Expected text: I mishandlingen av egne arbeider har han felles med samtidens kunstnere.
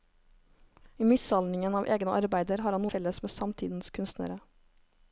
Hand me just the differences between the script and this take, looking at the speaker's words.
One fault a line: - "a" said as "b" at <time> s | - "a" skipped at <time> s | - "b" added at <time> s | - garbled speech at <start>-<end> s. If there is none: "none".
none